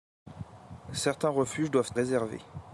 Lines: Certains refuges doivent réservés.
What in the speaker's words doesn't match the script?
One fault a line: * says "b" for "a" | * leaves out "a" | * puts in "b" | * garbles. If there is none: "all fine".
all fine